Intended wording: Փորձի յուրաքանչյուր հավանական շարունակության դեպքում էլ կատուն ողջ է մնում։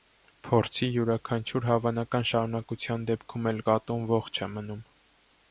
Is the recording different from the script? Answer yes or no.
no